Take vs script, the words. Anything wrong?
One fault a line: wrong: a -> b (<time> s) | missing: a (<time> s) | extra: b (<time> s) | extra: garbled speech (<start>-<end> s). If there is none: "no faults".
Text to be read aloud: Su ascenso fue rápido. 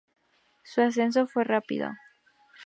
no faults